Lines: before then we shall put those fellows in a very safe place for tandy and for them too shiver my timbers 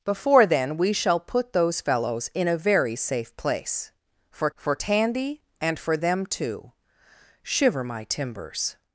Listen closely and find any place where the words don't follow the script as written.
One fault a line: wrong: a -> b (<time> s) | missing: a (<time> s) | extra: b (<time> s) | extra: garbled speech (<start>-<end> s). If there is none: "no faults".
extra: for (4.6 s)